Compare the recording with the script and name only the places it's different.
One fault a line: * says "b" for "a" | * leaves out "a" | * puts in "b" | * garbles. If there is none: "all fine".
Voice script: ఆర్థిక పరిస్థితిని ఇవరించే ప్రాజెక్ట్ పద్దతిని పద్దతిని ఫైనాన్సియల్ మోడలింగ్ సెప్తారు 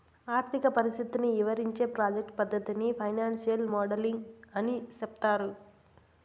* leaves out "పద్దతిని"
* puts in "అని"